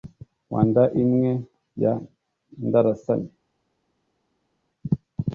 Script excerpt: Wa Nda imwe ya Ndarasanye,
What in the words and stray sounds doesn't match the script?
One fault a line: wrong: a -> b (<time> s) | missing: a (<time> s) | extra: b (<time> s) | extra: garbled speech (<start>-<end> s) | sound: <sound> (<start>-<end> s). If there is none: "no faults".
no faults